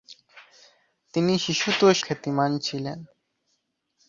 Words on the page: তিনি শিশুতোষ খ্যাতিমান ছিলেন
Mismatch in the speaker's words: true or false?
false